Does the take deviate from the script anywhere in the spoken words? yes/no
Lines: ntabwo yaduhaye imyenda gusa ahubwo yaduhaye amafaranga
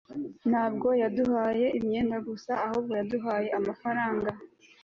no